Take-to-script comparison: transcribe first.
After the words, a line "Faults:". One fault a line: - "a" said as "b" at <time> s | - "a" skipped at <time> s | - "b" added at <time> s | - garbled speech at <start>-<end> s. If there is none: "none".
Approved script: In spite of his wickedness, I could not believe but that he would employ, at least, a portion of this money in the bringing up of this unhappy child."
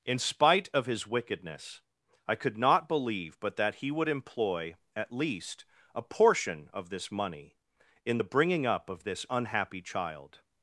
In spite of his wickedness, I could not believe but that he would employ, at least, a portion of this money in the bringing up of this unhappy child."
Faults:
none